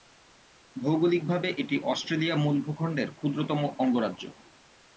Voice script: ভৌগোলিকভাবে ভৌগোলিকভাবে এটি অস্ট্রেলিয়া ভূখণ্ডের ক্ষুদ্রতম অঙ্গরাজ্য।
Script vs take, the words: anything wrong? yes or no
yes